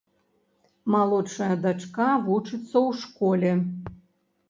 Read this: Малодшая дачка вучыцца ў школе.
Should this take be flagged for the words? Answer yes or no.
no